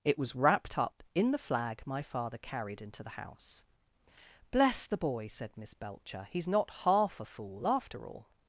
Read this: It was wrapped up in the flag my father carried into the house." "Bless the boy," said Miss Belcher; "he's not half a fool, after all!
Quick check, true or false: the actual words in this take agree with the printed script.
true